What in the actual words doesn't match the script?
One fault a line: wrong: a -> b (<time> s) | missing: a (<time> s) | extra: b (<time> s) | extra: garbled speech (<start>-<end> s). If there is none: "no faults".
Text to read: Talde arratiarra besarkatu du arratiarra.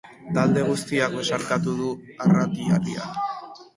wrong: arratiarra -> guztiak (0.7 s)